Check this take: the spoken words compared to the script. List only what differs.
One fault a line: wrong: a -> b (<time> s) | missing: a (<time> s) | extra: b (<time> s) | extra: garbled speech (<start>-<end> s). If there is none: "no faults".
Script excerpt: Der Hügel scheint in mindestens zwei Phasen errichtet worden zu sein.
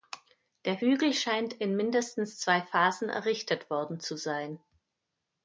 no faults